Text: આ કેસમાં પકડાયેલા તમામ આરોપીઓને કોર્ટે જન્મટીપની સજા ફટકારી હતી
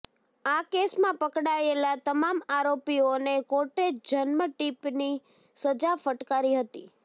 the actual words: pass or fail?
pass